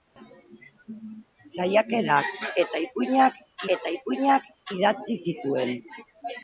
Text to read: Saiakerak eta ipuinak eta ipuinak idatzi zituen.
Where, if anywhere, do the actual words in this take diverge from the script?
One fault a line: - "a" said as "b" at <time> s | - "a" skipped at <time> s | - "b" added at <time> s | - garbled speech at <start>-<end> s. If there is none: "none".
none